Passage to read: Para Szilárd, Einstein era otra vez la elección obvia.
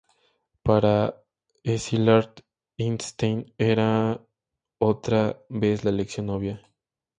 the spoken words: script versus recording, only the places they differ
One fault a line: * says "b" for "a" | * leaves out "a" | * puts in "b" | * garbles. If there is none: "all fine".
all fine